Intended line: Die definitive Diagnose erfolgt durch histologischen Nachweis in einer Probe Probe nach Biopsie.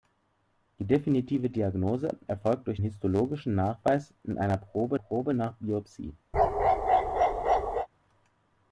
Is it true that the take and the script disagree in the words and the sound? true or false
true